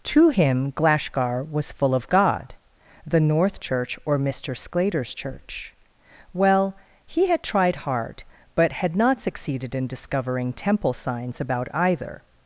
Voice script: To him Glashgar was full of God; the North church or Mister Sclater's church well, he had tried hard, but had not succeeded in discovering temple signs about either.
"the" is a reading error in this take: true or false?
false